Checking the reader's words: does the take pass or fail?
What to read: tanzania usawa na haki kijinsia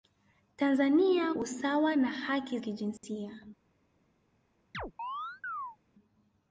pass